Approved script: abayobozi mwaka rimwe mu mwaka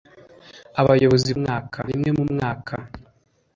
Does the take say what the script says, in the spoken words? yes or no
yes